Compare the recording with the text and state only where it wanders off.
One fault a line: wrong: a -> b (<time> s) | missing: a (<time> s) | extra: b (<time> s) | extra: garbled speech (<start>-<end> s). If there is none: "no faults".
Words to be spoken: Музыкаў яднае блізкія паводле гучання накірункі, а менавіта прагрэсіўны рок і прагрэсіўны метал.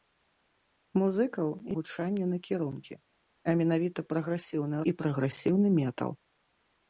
missing: яднае блізкія паводле (1.5 s)
missing: рок (4.8 s)